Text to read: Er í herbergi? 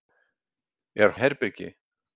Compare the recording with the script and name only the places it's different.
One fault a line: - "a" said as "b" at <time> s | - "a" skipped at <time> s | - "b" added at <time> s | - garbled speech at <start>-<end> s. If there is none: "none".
none